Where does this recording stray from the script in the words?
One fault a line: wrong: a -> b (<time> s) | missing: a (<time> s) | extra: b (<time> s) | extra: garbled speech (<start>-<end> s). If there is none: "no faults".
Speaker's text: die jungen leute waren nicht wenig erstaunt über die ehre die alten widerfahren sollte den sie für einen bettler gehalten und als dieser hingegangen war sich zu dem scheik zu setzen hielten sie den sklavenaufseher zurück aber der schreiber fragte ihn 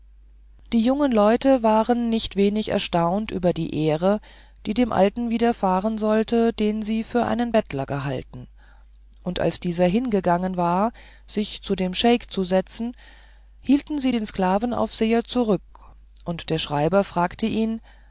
extra: dem (4.7 s)
wrong: aber -> und (16.3 s)